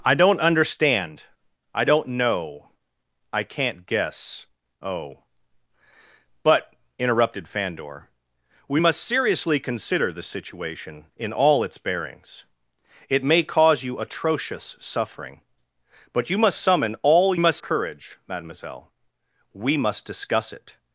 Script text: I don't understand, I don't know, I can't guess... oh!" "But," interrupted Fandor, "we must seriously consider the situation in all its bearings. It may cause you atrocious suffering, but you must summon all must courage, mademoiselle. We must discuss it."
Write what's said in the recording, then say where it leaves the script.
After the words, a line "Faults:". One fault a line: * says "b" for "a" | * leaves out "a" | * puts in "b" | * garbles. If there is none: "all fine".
I don't understand, I don't know, I can't guess... oh!" "But," interrupted Fandor, "we must seriously consider the situation in all its bearings. It may cause you atrocious suffering, but you must summon all must courage, mademoiselle. We must discuss it."
Faults:
all fine